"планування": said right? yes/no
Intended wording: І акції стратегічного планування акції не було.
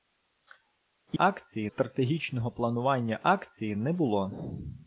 yes